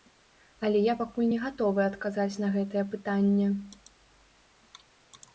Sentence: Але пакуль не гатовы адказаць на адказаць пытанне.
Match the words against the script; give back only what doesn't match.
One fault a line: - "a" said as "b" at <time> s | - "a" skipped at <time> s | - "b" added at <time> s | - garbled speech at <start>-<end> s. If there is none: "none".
- "я" added at 0.8 s
- "адказаць" said as "гэтае" at 2.6 s